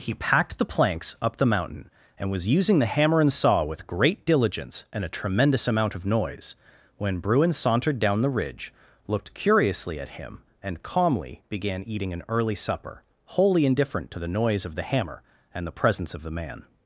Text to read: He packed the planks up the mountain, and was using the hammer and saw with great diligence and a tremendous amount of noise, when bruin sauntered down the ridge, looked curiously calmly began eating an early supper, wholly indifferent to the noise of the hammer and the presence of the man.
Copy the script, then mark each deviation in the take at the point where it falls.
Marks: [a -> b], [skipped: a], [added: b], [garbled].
He packed the planks up the mountain, and was using the hammer and saw with great diligence and a tremendous amount of noise, when bruin sauntered down the ridge, looked curiously [added: at him and] calmly began eating an early supper, wholly indifferent to the noise of the hammer and the presence of the man.